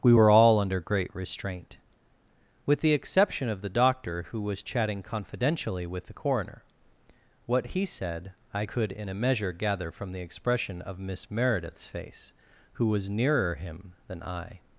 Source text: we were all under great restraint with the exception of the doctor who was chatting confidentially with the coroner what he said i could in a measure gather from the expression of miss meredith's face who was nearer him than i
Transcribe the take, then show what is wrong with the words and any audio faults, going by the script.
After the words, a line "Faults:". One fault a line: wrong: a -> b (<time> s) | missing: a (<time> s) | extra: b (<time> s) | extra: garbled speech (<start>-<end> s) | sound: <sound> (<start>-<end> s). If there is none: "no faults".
we were all under great restraint with the exception of the doctor who was chatting confidentially with the coroner what he said i could in a measure gather from the expression of miss meredith's face who was nearer him than i
Faults:
no faults